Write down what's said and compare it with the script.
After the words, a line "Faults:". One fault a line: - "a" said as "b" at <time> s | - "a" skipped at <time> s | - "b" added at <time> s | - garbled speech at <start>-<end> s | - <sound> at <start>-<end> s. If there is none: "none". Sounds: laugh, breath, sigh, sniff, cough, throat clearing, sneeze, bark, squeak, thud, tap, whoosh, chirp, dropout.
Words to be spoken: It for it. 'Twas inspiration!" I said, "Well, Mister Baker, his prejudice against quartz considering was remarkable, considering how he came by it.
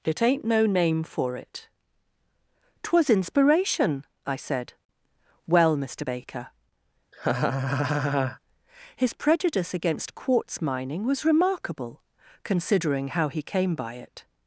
It ain't no name for it. 'Twas inspiration!" I said, "Well, Mister Baker, his prejudice against quartz mining was remarkable, considering how he came by it.
Faults:
- "ain't no name" added at 0.2 s
- laugh at 7.1-8.4 s
- "considering" said as "mining" at 10.6 s